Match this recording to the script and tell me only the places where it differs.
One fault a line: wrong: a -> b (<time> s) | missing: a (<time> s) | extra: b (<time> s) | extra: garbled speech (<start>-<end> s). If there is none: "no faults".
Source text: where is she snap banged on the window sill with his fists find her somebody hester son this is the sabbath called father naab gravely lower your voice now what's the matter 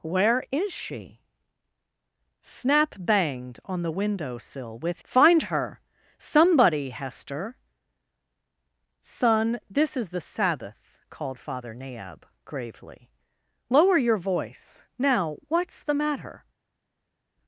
missing: his fists (5.0 s)